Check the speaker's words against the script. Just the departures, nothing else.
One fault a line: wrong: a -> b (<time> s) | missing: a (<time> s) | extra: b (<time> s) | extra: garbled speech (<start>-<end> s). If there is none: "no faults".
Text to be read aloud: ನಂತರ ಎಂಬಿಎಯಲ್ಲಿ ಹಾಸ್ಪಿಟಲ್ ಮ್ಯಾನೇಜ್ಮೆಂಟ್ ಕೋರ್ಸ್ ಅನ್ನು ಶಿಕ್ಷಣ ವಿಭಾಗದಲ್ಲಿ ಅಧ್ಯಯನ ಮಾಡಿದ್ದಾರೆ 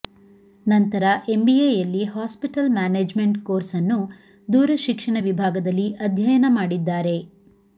extra: ದೂರ (4.5 s)